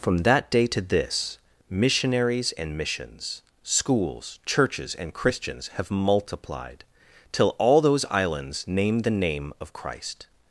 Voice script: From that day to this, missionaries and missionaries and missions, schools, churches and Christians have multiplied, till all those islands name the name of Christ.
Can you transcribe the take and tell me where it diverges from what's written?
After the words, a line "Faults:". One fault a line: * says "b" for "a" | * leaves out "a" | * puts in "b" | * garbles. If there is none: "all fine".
From that day to this, missionaries and missions, schools, churches and Christians have multiplied, till all those islands name the name of Christ.
Faults:
* leaves out "missionaries and"